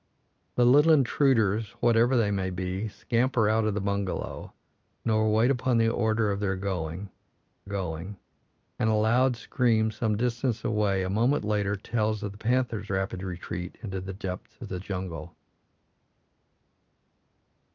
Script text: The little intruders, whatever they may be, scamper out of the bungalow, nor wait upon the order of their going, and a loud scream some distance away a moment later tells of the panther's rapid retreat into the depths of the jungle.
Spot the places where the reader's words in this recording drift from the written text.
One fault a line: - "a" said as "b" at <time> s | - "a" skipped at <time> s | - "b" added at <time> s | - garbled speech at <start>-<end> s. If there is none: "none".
- "going" added at 7.6 s